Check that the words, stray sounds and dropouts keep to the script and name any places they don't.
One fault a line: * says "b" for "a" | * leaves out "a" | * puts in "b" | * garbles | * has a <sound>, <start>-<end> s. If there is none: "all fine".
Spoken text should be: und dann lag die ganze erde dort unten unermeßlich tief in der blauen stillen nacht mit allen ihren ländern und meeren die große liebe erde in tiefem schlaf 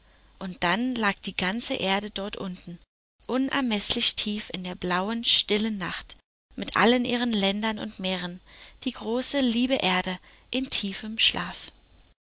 all fine